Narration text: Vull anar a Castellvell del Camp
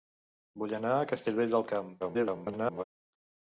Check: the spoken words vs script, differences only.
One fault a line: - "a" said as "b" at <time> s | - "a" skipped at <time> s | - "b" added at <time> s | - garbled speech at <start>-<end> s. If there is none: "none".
- garbled speech at 2.0-2.8 s